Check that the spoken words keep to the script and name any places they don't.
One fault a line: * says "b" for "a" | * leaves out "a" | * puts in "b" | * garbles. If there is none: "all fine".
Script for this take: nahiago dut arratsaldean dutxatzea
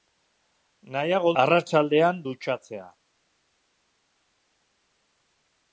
* leaves out "dut"